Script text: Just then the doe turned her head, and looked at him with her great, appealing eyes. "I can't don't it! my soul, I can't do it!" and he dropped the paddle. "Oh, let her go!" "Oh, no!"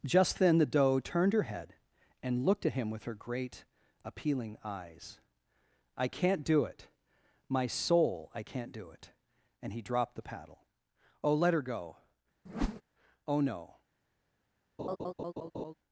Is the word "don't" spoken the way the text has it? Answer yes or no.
no